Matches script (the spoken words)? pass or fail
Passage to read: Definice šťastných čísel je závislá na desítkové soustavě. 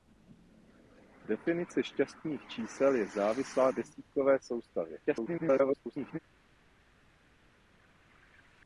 fail